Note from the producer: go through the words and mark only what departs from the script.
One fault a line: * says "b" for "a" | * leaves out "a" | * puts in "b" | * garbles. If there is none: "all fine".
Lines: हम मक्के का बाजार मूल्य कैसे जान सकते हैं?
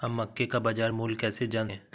* leaves out "सकते"